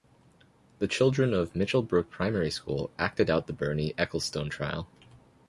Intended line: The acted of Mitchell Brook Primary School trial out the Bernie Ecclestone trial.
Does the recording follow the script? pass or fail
fail